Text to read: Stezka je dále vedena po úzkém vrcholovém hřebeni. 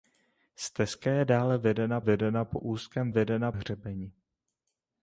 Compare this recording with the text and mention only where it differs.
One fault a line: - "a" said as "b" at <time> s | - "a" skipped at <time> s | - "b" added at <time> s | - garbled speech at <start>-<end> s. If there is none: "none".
- "vedena" added at 2.0 s
- "vrcholovém" said as "vedena" at 3.1 s